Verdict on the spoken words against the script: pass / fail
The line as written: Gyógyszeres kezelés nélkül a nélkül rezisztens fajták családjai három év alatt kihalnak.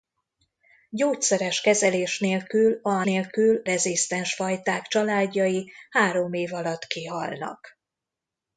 pass